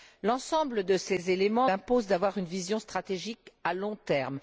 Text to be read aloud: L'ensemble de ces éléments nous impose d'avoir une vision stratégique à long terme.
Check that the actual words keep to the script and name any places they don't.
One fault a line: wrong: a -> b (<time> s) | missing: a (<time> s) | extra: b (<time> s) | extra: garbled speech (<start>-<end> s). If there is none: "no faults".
missing: nous (1.7 s)